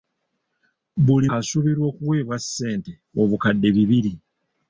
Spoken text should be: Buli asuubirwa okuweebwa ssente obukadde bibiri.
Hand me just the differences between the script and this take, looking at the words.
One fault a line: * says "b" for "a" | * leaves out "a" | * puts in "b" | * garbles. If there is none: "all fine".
all fine